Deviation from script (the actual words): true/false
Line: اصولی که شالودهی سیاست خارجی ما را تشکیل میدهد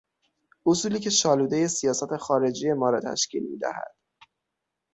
false